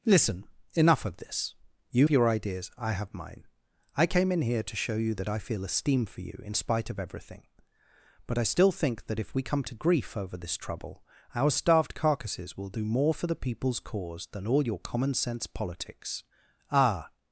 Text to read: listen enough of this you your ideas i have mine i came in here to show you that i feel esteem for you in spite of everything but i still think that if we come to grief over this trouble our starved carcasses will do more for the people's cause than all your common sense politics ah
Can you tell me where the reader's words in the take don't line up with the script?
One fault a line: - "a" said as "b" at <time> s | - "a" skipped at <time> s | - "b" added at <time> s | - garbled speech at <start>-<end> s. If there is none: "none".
none